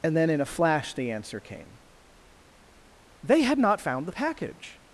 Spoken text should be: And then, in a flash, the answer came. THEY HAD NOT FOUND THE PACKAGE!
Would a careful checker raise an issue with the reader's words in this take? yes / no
no